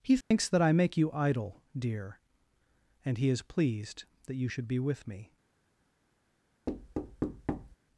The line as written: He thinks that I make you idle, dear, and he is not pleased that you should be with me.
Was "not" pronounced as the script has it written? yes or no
no